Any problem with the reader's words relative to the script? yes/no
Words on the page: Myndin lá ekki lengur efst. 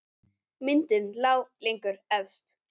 yes